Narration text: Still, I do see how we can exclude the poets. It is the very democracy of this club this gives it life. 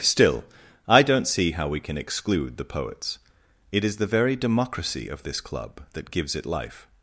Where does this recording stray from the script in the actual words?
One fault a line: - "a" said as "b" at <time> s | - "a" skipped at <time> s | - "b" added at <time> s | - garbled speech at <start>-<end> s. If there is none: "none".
- "do" said as "don't" at 1.0 s
- "this" said as "that" at 5.9 s